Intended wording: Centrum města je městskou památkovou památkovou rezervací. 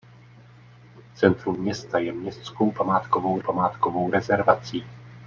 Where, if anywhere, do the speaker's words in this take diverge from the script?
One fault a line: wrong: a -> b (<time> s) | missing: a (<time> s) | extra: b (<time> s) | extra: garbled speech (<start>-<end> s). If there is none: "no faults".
no faults